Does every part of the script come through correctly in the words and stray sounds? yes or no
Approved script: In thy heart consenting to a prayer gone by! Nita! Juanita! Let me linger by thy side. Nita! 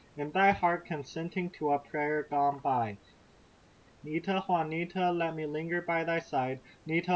yes